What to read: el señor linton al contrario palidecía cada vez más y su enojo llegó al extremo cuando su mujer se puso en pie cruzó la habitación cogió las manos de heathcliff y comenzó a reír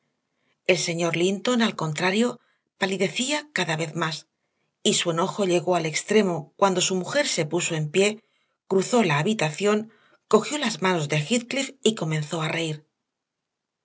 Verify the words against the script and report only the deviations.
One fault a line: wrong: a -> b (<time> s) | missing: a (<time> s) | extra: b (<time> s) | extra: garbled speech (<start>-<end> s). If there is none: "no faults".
no faults